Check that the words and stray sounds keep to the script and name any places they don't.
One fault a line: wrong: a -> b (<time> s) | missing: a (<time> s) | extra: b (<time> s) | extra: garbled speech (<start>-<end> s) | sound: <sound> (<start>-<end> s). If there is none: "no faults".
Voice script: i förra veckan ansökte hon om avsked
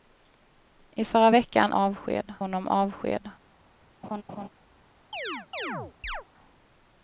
wrong: ansökte -> avsked (1.7 s)
sound: laugh (4.0-4.5 s)
sound: chirp (5.1-6.2 s)